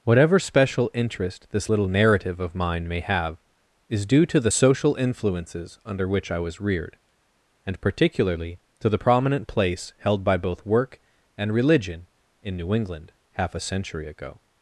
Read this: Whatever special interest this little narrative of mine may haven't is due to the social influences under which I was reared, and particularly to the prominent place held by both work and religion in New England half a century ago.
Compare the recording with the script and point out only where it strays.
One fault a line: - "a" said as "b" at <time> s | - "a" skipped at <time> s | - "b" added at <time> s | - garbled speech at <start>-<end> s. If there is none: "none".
- "haven't" said as "have" at 3.0 s